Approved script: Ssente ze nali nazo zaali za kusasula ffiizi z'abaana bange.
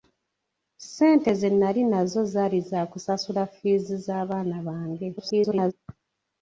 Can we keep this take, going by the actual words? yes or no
no